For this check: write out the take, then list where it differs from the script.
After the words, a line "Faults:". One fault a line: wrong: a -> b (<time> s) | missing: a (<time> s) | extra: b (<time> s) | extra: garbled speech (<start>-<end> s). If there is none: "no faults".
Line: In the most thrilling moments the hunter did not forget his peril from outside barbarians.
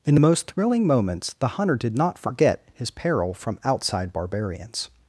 In the most thrilling moments the hunter did not forget his peril from outside barbarians.
Faults:
no faults